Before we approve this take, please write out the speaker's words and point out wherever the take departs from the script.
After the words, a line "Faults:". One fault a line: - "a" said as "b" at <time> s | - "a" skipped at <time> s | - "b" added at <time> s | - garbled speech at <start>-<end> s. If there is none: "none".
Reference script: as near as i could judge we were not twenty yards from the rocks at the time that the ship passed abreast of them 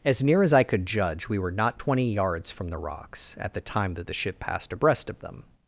as near as i could judge we were not twenty yards from the rocks at the time that the ship passed abreast of them
Faults:
none